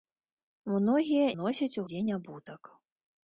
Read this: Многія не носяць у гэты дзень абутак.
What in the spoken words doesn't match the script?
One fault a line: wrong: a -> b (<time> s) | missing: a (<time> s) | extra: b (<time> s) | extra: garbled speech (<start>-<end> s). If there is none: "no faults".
missing: не (1.3 s)
missing: гэты (1.9 s)